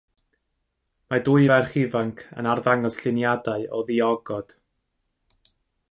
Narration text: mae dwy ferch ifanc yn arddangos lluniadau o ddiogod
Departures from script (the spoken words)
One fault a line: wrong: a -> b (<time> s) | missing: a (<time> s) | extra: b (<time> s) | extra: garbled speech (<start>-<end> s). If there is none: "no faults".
no faults